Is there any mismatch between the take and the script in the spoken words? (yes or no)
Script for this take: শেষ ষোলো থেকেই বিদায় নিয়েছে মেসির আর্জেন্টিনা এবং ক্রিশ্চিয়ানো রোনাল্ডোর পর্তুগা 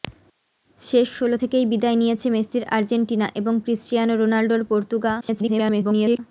yes